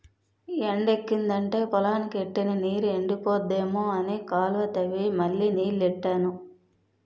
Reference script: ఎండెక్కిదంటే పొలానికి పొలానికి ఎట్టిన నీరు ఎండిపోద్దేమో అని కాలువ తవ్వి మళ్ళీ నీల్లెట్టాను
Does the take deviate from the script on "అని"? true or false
false